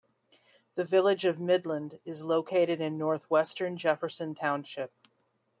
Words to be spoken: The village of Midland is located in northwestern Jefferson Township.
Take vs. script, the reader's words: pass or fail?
pass